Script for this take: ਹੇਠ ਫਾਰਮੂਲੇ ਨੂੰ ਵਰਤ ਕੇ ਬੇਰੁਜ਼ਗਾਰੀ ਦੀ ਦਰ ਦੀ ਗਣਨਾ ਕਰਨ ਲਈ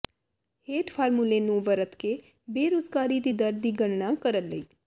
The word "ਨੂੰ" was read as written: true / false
true